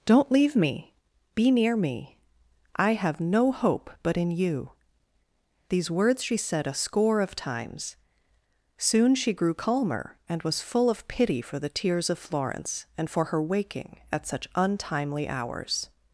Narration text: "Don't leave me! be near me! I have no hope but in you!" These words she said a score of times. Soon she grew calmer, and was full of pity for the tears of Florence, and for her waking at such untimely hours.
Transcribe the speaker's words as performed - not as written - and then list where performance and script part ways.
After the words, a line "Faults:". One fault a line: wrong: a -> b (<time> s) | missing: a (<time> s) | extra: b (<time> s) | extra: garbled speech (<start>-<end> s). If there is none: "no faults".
"Don't leave me! be near me! I have no hope but in you!" These words she said a score of times. Soon she grew calmer, and was full of pity for the tears of Florence, and for her waking at such untimely hours.
Faults:
no faults